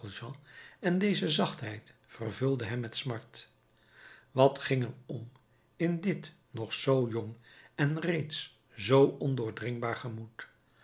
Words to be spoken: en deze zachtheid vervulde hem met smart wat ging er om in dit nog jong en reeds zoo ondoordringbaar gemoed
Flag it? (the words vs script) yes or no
yes